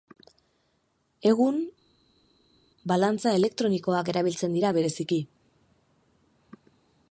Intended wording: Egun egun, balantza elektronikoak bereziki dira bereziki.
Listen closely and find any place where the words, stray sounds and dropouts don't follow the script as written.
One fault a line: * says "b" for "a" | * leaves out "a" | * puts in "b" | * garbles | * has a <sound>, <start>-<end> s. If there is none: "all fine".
* leaves out "egun"
* says "erabiltzen" for "bereziki"